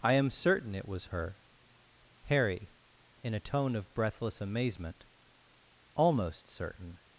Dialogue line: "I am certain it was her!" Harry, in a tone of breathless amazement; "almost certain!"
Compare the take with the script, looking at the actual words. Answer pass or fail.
pass